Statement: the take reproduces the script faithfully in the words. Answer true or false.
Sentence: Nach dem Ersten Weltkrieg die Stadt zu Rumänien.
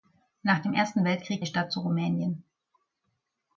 true